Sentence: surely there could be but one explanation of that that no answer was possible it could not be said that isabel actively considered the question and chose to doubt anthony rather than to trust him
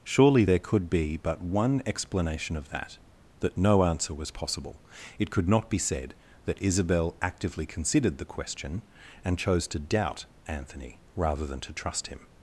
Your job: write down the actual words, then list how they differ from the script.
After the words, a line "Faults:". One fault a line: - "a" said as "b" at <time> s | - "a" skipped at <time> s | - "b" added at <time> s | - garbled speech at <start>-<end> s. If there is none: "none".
surely there could be but one explanation of that that no answer was possible it could not be said that isabel actively considered the question and chose to doubt anthony rather than to trust him
Faults:
none